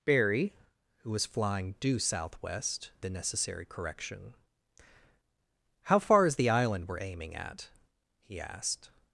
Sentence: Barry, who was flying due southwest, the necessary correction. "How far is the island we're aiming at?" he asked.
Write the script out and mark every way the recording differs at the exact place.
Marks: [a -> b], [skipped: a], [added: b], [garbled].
Barry, who was flying due southwest, the necessary correction. "How far is the island we're aiming at?" he asked.